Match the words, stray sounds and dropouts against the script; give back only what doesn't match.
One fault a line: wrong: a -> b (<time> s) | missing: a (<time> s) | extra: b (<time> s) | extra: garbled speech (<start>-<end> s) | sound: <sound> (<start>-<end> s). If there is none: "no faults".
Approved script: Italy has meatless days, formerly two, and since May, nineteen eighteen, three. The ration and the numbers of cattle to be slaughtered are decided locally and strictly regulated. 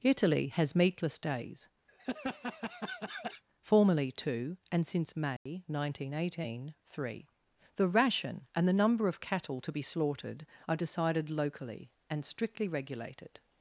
sound: laugh (1.9-3.4 s)
sound: dropout (5.4-5.5 s)
wrong: numbers -> number (8.7 s)